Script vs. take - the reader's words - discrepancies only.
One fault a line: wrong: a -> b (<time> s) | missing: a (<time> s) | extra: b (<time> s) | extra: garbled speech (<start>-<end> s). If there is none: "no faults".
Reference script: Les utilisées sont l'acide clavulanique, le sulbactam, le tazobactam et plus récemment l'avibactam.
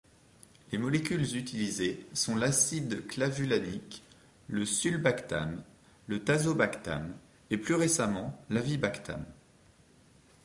extra: molécules (0.8 s)